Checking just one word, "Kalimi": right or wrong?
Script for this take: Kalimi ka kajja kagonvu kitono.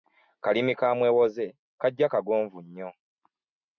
right